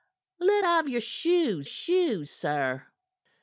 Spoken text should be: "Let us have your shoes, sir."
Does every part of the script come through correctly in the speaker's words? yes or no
no